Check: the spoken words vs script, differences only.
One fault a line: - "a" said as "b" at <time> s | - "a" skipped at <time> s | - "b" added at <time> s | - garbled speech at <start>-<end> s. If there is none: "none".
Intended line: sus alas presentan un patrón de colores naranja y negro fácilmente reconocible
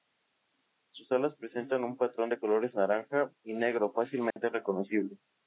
none